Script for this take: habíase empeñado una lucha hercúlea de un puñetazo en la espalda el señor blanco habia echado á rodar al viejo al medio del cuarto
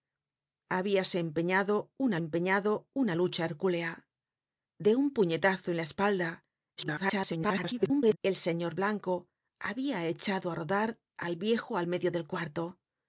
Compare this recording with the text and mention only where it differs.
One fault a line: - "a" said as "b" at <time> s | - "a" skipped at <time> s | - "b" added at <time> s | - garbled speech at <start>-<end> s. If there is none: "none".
- "empeñado una" added at 2.2 s
- garbled speech at 6.8-8.2 s